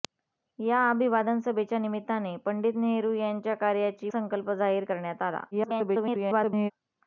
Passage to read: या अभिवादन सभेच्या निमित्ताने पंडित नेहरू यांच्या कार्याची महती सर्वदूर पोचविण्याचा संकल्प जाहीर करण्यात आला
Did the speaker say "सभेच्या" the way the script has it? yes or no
yes